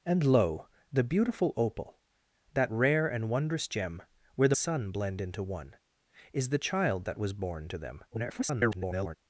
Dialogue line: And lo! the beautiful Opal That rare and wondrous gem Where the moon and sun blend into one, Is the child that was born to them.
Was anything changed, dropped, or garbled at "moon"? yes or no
yes